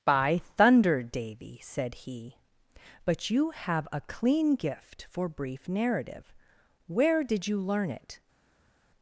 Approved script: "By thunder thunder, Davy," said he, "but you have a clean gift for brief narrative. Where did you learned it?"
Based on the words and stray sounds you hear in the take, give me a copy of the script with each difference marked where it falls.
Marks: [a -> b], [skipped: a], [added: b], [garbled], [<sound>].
"By thunder [skipped: thunder,] Davy," said he, "but you have a clean gift for brief narrative. Where did you [learned -> learn] it?"